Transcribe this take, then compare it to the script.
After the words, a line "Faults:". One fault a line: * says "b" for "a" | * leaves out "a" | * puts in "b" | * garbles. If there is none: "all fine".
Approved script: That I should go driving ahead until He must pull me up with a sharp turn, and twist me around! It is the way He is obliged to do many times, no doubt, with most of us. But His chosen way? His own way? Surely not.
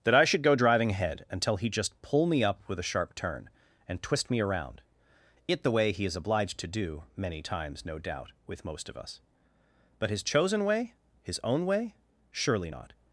That I should go driving ahead until He just pull me up with a sharp turn, and twist me around! It the way He is obliged to do many times, no doubt, with most of us. But His chosen way? His own way? Surely not.
Faults:
* says "just" for "must"
* leaves out "is"